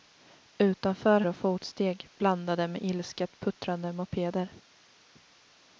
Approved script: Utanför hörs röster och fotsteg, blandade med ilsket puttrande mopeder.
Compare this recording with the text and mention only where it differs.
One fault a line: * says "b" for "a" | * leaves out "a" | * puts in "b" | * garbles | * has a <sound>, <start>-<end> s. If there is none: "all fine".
* leaves out "hörs röster"